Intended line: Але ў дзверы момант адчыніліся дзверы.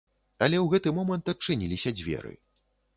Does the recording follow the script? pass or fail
fail